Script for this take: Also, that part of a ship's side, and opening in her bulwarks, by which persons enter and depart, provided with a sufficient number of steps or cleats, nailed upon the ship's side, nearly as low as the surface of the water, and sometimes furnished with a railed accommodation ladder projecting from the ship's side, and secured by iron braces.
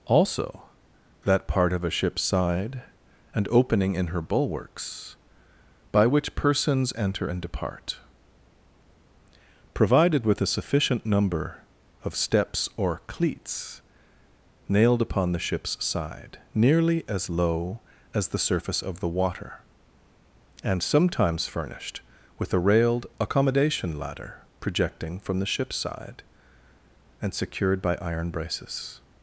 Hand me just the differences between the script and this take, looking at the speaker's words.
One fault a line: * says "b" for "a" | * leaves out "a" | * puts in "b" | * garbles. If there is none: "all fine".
all fine